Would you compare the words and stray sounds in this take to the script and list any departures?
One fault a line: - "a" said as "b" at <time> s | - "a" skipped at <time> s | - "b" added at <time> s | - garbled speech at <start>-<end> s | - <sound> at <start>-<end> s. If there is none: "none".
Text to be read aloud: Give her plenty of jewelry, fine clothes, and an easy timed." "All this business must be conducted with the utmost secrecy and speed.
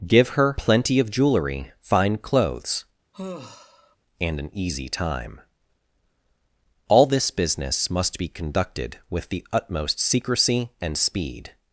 - sigh at 3.1-4.0 s
- "timed" said as "time" at 4.9 s